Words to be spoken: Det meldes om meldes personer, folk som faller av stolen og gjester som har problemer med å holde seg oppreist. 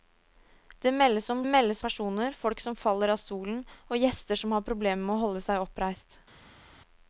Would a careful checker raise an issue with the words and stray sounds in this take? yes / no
no